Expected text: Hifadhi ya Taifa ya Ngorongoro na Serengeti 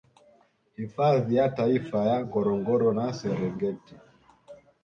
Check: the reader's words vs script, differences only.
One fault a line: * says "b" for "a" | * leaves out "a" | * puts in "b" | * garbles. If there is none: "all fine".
all fine